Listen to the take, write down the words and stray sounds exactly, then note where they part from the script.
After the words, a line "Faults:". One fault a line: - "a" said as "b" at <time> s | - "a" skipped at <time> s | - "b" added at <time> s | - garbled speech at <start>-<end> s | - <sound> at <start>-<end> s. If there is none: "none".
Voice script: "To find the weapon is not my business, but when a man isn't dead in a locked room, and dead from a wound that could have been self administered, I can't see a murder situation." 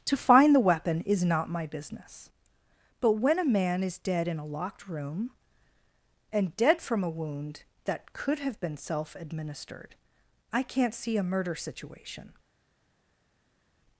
"To find the weapon is not my business, but when a man is dead in a locked room, and dead from a wound that could have been self administered, I can't see a murder situation."
Faults:
- "isn't" said as "is" at 3.8 s